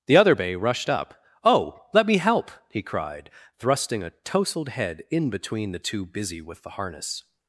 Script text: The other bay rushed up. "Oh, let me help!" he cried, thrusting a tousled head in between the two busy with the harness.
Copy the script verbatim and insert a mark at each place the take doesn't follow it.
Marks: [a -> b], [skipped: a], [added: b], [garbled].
The other bay rushed up. "Oh, let me help!" he cried, thrusting a tousled head in between the two busy with the harness.